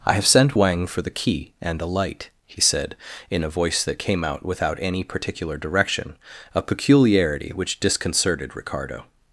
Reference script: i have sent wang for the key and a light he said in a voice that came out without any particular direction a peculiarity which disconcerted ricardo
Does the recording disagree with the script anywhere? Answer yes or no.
no